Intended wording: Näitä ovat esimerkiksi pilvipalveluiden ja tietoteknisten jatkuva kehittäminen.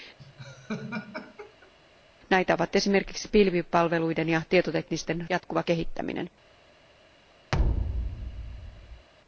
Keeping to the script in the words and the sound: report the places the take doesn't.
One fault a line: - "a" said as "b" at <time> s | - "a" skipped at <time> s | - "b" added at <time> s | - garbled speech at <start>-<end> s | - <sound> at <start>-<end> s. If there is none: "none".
- laugh at 0.2-1.7 s
- thud at 7.5-9.1 s